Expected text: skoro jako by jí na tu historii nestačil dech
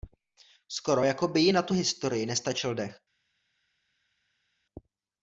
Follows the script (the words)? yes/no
yes